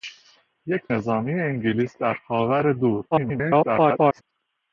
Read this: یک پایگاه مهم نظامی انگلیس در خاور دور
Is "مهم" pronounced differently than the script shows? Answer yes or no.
yes